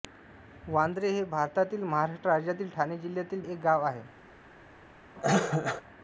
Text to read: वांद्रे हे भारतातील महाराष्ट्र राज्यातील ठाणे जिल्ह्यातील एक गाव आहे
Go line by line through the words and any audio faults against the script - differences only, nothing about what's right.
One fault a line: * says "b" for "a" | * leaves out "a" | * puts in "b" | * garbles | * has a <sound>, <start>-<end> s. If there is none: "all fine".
* has a cough, 5.2-5.8 s